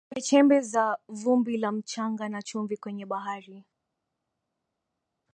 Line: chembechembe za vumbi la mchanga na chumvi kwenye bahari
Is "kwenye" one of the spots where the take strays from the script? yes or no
no